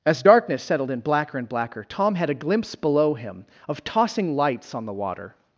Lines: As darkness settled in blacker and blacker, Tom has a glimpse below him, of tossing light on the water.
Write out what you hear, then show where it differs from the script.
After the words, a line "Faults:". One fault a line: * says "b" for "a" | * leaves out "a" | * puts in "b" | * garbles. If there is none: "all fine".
As darkness settled in blacker and blacker, Tom had a glimpse below him, of tossing lights on the water.
Faults:
* says "had" for "has"
* says "lights" for "light"